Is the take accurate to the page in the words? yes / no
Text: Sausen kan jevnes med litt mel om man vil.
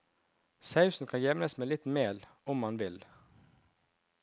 yes